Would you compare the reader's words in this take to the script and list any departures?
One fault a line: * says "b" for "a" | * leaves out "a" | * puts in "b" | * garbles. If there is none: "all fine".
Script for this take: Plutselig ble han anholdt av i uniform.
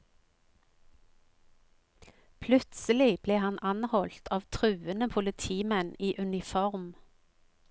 * puts in "truende politimenn"